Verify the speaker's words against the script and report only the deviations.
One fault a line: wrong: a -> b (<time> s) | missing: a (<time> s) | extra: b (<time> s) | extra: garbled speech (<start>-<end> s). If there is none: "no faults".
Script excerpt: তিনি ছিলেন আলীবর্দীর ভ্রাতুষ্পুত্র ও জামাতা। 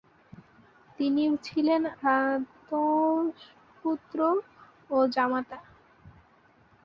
missing: আলীবর্দীর (1.8 s)